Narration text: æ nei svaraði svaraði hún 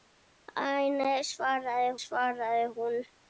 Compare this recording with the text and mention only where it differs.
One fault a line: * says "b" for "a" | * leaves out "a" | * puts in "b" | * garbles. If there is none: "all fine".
all fine